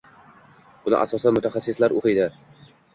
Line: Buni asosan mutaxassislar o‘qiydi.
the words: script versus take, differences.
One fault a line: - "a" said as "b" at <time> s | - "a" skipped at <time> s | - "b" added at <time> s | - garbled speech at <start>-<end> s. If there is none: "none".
none